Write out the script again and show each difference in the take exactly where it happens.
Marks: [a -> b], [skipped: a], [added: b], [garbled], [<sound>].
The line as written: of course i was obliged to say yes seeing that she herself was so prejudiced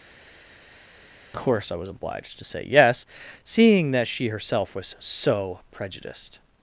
[skipped: of] course i was obliged to say yes seeing that she herself was so prejudiced